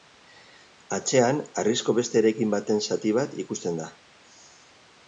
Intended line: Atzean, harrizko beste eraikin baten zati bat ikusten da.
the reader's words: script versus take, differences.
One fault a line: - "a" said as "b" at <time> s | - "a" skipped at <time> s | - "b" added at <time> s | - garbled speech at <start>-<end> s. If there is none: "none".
none